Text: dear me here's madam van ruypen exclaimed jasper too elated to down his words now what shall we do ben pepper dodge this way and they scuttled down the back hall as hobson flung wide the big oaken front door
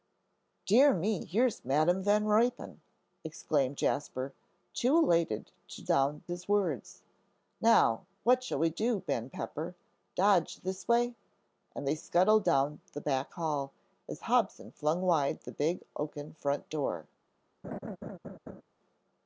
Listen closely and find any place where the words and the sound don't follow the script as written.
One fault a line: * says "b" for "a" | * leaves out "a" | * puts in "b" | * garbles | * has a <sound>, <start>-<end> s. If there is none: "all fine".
* has a laugh, 17.6-18.6 s